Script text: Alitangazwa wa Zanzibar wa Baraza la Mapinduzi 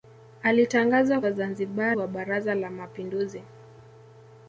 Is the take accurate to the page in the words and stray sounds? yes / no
yes